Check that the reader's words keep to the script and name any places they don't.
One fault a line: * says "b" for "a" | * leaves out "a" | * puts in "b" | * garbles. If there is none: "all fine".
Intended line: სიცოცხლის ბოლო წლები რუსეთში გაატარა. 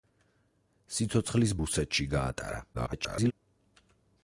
* leaves out "ბოლო წლები"
* garbles